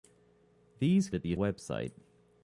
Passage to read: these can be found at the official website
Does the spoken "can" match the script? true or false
false